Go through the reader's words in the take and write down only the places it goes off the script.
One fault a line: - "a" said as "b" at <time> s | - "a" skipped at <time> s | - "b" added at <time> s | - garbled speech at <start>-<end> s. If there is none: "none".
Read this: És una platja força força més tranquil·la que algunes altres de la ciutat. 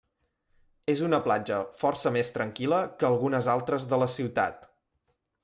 - "força" skipped at 2.1 s